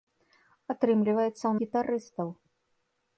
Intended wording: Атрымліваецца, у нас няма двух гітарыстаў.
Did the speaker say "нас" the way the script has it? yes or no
no